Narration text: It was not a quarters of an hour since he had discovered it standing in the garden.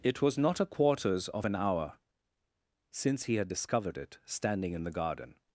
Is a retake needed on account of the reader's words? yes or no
no